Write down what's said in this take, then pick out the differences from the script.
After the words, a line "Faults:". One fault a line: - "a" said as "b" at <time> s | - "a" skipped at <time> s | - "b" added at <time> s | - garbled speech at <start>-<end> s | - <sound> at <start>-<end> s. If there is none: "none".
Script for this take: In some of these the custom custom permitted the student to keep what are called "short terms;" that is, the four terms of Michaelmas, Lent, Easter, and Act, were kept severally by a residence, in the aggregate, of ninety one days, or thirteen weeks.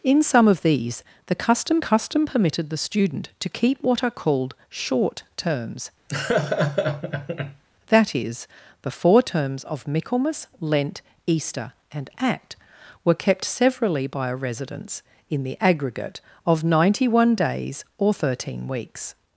In some of these the custom custom permitted the student to keep what are called "short terms;" that is, the four terms of Michaelmas, Lent, Easter, and Act, were kept severally by a residence, in the aggregate, of ninety one days, or thirteen weeks.
Faults:
- laugh at 6.1-7.6 s